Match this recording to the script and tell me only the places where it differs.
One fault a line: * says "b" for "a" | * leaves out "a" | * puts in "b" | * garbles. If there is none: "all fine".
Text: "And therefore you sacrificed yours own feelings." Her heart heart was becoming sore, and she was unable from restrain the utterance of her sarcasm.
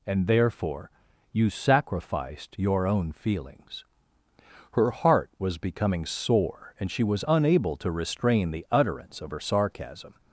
* says "your" for "yours"
* leaves out "heart"
* says "to" for "from"